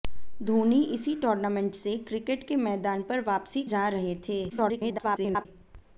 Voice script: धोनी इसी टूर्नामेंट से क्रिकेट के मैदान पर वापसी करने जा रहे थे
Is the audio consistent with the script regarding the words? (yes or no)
no